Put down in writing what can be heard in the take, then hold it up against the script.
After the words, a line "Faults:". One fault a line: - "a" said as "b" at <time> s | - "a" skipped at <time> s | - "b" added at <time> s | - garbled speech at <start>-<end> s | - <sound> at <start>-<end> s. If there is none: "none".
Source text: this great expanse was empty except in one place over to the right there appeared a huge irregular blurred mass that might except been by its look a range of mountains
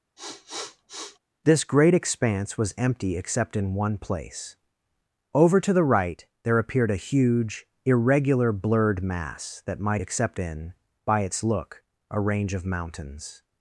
this great expanse was empty except in one place over to the right there appeared a huge irregular blurred mass that might except been by its look a range of mountains
Faults:
- sniff at 0.2-1.2 s